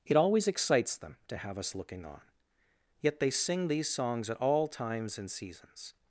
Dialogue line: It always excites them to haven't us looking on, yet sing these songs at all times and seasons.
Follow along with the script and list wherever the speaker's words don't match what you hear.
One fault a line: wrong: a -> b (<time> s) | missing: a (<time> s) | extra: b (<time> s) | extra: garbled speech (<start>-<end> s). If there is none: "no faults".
wrong: haven't -> have (1.4 s)
extra: they (3.2 s)